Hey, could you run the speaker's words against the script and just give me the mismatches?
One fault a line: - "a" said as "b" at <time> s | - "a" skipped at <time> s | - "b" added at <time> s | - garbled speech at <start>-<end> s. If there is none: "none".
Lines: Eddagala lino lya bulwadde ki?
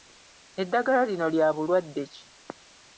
none